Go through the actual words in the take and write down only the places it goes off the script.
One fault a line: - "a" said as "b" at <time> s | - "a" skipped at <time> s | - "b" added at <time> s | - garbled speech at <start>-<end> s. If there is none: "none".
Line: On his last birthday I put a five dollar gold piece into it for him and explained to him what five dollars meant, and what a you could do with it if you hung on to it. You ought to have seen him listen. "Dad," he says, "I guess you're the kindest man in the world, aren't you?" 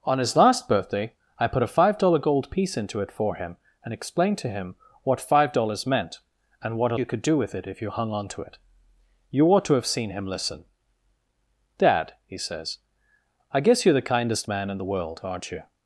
none